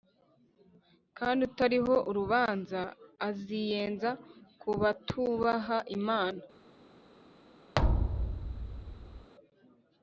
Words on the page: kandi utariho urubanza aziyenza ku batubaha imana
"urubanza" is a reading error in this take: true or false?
false